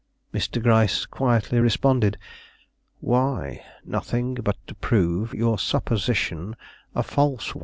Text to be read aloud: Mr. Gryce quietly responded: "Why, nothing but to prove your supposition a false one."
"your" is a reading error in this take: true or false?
false